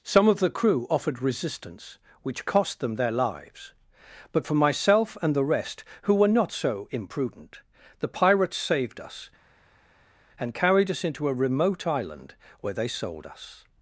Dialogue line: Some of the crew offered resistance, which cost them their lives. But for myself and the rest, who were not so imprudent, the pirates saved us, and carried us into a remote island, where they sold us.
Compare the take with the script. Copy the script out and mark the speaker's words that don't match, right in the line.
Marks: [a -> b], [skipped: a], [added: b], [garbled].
Some of the crew offered resistance, which cost them their lives. But for myself and the rest, who were not so imprudent, the pirates saved us, and carried us into a remote island, where they sold us.